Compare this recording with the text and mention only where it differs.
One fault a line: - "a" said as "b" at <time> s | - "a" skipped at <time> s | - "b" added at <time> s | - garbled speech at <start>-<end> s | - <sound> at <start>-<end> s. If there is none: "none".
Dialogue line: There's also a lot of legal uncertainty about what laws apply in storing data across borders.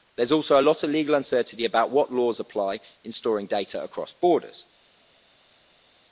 none